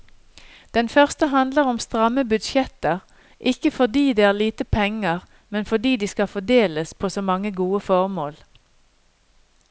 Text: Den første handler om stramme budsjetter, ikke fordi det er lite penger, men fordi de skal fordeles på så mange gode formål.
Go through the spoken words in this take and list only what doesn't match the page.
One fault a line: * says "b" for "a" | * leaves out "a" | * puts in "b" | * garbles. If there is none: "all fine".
all fine